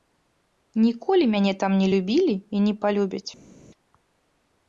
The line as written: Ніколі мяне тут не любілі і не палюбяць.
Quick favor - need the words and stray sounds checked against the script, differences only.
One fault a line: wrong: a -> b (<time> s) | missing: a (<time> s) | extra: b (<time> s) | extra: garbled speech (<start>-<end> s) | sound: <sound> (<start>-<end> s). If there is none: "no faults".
wrong: тут -> там (1.6 s)